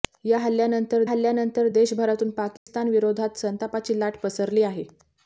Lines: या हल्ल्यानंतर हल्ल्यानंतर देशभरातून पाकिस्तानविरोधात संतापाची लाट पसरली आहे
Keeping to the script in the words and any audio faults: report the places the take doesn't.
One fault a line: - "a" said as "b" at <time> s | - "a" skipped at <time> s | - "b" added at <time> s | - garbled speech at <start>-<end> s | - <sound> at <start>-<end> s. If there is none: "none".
- dropout at 2.6-2.7 s